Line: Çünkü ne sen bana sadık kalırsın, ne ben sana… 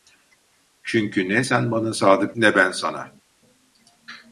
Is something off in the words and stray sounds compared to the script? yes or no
yes